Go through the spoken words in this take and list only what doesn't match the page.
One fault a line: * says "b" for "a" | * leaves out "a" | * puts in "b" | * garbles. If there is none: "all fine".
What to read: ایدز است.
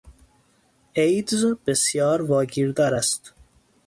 * puts in "بسیار واگیردار"